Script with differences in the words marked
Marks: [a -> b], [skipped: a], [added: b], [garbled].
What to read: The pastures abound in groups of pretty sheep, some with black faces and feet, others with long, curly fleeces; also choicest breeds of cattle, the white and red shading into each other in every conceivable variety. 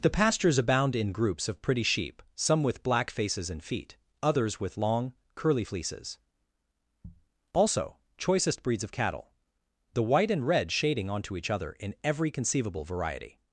The pastures abound in groups of pretty sheep, some with black faces and feet, others with long, curly fleeces; also choicest breeds of cattle, the white and red shading [into -> onto] each other in every conceivable variety.